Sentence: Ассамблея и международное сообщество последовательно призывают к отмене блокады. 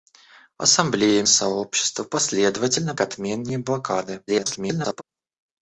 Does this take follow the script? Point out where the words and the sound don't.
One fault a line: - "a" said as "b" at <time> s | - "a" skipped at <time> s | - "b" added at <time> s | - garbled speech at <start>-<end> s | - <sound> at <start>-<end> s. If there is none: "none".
- "международное" skipped at 1.2 s
- "призывают" skipped at 2.9 s
- garbled speech at 4.3-5.0 s